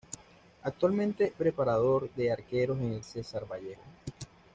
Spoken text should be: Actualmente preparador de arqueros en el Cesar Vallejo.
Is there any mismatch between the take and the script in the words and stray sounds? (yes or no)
no